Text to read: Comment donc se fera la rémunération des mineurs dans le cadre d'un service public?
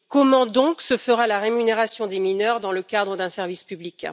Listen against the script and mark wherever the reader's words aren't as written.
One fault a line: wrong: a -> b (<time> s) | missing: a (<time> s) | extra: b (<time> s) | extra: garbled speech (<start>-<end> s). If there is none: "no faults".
no faults